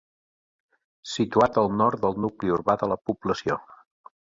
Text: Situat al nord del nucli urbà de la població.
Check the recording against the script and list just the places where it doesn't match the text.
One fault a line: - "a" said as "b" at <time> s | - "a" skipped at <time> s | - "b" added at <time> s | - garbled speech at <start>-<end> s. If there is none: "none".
none